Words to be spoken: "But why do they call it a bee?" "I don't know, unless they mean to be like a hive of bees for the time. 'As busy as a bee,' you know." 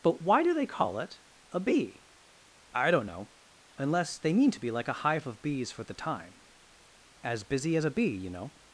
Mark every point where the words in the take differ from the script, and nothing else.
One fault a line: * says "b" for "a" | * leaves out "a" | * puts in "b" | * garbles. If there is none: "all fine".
all fine